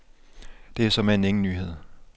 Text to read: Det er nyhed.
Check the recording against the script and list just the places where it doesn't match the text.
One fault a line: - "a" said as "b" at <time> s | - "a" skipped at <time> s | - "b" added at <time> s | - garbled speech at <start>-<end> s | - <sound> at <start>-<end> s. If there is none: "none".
- "såmænd ingen" added at 0.9 s